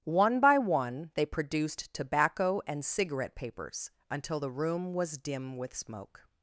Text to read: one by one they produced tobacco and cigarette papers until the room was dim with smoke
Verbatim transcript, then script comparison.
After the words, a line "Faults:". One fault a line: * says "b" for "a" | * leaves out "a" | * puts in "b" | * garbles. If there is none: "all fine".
one by one they produced tobacco and cigarette papers until the room was dim with smoke
Faults:
all fine